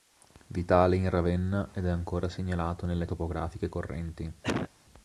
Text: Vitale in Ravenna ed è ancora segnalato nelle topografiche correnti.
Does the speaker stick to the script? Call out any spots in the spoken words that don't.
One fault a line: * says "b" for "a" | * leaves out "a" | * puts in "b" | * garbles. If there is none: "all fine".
all fine